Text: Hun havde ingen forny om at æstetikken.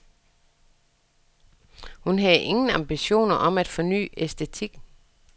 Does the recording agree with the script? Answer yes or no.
no